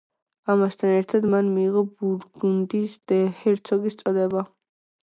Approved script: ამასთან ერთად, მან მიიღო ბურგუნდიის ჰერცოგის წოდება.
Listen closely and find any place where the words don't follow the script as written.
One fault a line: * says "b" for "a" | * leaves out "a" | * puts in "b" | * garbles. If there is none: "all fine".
all fine